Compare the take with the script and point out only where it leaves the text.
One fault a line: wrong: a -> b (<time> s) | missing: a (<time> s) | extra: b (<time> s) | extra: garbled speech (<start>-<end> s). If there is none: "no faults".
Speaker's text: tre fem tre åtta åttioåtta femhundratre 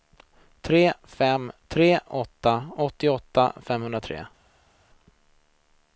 no faults